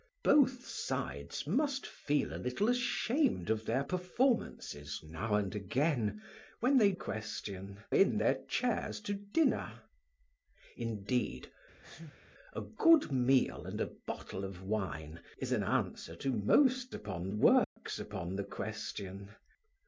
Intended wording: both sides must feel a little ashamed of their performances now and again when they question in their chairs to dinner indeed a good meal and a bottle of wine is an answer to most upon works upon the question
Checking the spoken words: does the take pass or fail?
pass